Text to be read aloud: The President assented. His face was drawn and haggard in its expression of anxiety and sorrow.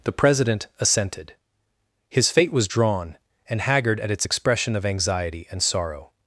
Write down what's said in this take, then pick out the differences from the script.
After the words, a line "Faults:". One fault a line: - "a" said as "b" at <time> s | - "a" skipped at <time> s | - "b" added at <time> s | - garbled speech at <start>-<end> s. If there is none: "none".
The President assented. His fate was drawn and haggard at its expression of anxiety and sorrow.
Faults:
- "face" said as "fate" at 2.3 s
- "in" said as "at" at 4.0 s